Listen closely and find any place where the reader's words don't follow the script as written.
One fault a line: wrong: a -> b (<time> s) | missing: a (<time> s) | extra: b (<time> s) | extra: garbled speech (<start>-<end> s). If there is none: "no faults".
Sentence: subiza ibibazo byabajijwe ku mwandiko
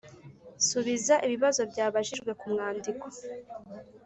no faults